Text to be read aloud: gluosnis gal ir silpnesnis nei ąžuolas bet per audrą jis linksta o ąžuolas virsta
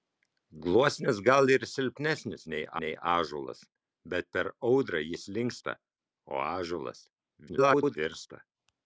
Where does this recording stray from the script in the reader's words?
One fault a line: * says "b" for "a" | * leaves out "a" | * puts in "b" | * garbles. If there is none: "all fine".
* puts in "nei"
* garbles